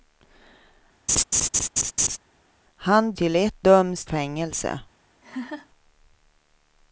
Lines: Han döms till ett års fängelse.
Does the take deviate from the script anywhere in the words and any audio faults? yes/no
yes